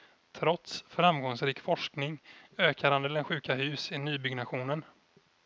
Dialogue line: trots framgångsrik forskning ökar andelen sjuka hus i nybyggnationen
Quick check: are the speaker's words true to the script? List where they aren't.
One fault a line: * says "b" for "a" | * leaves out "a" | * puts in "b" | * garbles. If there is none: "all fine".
all fine